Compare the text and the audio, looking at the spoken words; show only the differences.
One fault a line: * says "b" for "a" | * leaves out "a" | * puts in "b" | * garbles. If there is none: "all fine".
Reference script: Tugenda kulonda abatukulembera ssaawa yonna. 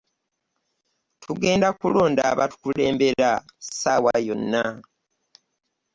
all fine